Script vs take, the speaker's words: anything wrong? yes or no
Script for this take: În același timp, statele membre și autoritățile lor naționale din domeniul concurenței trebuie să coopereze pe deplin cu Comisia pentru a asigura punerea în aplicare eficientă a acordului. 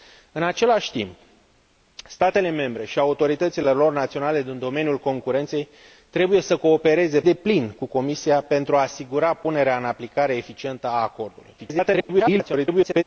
yes